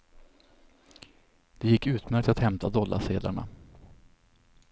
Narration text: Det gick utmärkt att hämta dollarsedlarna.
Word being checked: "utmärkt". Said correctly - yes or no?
yes